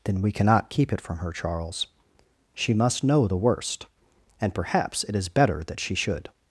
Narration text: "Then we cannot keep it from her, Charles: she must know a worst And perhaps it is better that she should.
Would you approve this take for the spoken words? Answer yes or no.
no